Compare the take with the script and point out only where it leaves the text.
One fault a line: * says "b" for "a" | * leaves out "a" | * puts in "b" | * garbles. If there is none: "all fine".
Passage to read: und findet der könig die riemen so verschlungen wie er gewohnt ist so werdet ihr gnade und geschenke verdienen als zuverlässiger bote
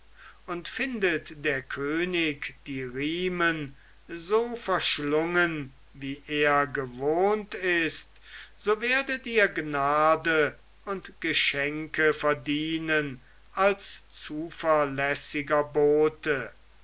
all fine